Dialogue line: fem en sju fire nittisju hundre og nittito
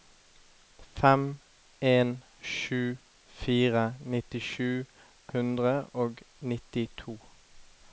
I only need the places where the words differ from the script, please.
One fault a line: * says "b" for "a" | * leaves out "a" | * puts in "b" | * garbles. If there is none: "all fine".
all fine